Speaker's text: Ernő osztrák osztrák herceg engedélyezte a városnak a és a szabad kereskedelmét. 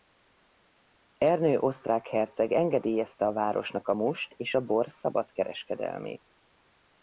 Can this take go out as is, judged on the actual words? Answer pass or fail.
fail